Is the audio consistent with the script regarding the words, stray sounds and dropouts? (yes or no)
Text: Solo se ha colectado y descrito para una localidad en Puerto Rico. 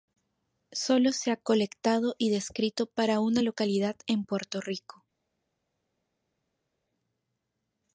yes